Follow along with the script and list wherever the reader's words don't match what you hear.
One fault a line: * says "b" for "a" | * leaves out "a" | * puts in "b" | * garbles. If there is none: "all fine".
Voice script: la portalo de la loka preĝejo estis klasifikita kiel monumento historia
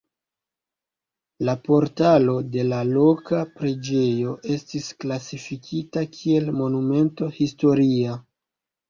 all fine